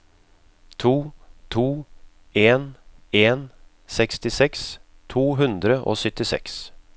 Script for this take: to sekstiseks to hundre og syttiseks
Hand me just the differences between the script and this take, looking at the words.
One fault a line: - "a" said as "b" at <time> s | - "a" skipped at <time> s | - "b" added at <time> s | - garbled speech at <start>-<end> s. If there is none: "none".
- "to en en" added at 1.5 s